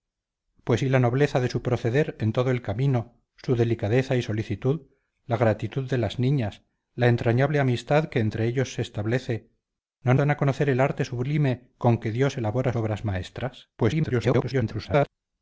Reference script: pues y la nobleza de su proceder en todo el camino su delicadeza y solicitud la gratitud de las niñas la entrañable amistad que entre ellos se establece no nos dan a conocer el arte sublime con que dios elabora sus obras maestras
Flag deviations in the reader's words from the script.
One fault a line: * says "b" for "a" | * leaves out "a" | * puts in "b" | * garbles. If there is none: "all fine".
* leaves out "nos"
* leaves out "sus"
* garbles